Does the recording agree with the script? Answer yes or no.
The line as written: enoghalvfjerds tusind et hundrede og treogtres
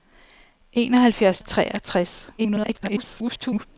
no